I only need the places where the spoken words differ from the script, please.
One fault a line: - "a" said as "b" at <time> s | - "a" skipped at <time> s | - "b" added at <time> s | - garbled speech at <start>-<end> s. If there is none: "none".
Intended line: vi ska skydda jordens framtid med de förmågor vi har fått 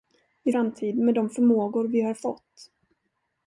- "ska skydda jordens" skipped at 0.5 s